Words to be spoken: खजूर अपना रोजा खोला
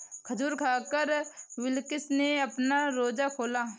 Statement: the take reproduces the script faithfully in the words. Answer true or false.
false